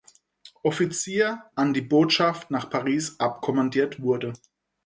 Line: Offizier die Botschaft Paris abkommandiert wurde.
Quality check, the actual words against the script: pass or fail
fail